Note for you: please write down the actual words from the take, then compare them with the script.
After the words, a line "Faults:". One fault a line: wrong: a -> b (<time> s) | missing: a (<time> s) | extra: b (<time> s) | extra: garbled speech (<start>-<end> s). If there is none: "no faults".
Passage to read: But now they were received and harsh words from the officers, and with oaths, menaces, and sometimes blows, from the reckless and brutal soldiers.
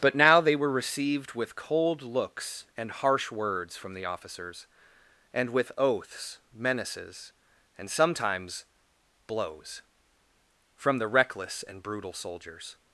But now they were received with cold looks and harsh words from the officers, and with oaths, menaces, and sometimes blows, from the reckless and brutal soldiers.
Faults:
extra: with cold looks (1.3 s)